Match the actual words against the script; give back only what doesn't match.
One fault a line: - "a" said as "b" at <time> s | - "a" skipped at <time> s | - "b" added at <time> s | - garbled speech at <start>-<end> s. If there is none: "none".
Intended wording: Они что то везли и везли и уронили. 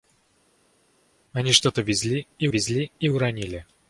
none